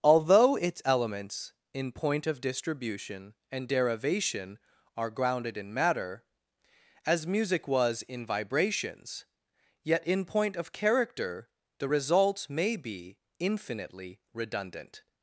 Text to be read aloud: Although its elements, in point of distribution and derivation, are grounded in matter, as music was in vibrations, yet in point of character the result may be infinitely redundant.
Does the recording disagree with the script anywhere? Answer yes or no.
no